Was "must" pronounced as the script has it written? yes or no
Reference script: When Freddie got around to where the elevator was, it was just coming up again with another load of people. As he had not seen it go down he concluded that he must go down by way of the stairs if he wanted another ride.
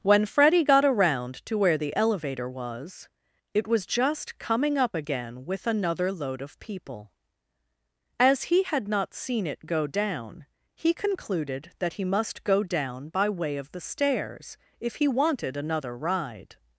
yes